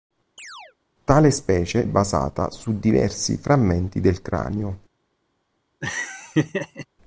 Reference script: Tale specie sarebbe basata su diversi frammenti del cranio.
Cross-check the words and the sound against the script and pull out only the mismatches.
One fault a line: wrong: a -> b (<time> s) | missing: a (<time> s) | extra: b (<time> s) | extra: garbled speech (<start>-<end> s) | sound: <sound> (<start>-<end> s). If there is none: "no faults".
sound: chirp (0.4-0.8 s)
missing: sarebbe (1.9 s)
sound: laugh (5.8-6.9 s)